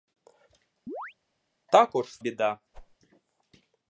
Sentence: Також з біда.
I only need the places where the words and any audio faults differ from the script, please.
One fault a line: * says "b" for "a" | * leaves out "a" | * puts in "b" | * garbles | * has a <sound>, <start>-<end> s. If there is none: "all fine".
* has a chirp, 0.9-1.1 s
* has a whoosh, 2.7-3.0 s